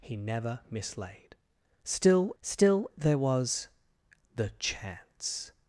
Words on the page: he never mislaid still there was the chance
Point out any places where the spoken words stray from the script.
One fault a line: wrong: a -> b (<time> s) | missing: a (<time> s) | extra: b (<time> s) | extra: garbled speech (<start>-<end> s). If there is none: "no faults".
extra: still (2.4 s)